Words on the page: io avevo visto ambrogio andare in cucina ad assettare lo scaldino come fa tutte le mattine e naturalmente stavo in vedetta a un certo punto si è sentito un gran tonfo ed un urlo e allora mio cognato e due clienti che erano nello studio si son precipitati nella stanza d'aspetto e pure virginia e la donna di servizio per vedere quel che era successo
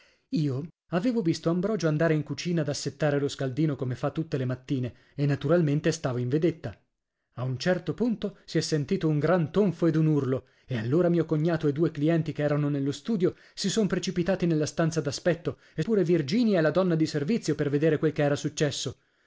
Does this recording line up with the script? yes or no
yes